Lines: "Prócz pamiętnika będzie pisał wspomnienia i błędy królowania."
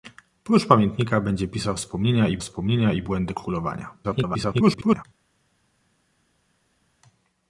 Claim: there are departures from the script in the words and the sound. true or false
true